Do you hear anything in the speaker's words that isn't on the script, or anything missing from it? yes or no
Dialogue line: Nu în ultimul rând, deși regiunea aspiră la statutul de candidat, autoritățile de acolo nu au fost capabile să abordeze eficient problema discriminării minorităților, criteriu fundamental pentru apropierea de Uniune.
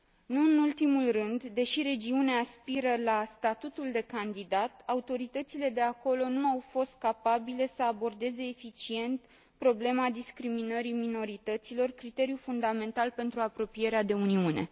no